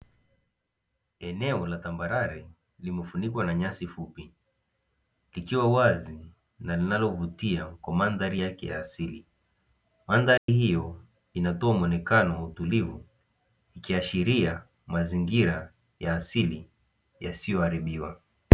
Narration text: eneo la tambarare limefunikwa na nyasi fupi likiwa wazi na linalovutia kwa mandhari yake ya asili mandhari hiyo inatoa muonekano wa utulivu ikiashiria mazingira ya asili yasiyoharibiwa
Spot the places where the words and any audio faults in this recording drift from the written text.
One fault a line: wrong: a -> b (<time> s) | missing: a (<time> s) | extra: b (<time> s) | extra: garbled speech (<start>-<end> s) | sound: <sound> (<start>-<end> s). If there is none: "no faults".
sound: dropout (10.4-10.5 s)